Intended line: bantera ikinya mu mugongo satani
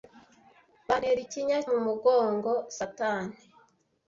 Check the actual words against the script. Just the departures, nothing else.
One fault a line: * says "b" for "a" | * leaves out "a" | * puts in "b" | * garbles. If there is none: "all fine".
all fine